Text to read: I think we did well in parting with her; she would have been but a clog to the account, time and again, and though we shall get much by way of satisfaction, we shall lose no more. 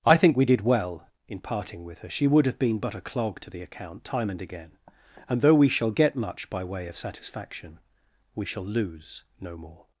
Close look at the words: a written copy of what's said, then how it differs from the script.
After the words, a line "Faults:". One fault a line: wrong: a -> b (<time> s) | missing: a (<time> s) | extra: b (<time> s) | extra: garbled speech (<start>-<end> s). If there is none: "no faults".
I think we did well in parting with her; she would have been but a clog to the account, time and again, and though we shall get much by way of satisfaction, we shall lose no more.
Faults:
no faults